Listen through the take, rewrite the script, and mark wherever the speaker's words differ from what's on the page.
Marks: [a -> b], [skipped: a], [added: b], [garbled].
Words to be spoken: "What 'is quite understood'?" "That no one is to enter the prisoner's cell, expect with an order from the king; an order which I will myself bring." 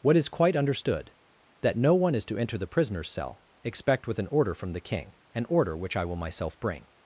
"What 'is quite understood'?" "That no one is to enter the prisoner's cell, expect with an order from the king; an order which I will myself bring."